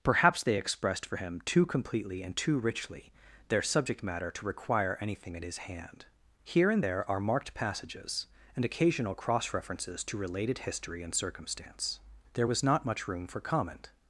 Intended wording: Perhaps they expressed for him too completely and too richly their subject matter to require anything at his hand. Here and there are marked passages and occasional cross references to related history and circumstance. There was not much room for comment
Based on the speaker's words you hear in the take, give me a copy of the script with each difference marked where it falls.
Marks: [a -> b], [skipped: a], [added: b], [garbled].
Perhaps they expressed for him too completely and too richly their subject matter to require anything at his hand. Here and there are marked passages and occasional cross references to related history and circumstance. There was not much room for comment